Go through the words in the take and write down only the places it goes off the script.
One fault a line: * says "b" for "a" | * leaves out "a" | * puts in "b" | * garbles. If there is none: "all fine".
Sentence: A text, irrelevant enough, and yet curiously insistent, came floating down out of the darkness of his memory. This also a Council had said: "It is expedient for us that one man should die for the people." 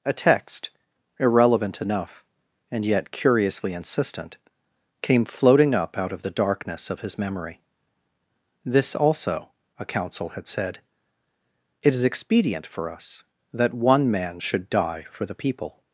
* says "up" for "down"